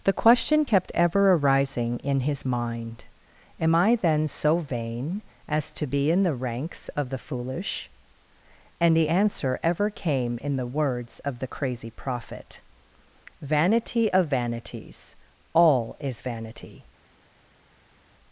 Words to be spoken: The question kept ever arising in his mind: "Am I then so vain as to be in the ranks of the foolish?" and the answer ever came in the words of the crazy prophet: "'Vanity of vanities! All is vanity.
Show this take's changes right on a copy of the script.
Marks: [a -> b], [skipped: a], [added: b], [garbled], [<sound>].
The question kept ever arising in his mind: "Am I then so vain as to be in the ranks of the foolish?" and the answer ever came in the words of the crazy prophet: "'Vanity of vanities! All is vanity.